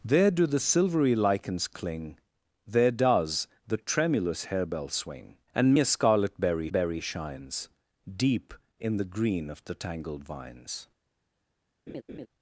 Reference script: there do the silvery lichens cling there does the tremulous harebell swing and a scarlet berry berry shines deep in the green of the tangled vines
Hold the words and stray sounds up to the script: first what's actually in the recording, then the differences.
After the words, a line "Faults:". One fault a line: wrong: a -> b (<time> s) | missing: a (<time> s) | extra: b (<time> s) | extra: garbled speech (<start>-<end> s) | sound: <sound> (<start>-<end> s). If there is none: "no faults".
there do the silvery lichens cling there does the tremulous harebell swing and a scarlet berry berry shines deep in the green of the tangled vines
Faults:
sound: laugh (11.9-12.3 s)